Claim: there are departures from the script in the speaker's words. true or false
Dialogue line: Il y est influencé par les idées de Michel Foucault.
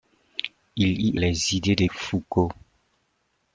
true